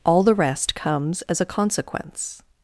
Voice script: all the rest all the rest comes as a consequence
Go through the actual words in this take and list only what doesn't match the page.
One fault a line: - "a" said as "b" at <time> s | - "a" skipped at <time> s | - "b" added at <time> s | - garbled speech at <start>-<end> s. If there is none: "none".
- "all the rest" skipped at 0.7 s